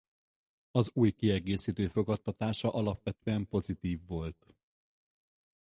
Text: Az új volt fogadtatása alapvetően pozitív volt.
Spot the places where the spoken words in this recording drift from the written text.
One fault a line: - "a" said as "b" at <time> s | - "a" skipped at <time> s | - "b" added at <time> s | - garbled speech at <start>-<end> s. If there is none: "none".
- "volt" said as "kiegészítő" at 1.1 s